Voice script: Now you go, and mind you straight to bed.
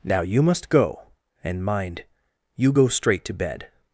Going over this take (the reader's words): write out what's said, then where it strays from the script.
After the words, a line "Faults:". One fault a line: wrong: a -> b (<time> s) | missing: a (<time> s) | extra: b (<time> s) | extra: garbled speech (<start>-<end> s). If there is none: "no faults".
Now you must go, and mind you go straight to bed.
Faults:
extra: must (0.4 s)
extra: go (2.7 s)